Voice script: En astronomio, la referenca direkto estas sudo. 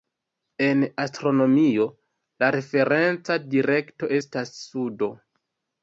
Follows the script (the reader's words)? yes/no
yes